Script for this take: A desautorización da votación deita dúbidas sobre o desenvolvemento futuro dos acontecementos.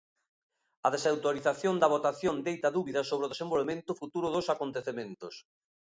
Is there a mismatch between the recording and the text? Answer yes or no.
no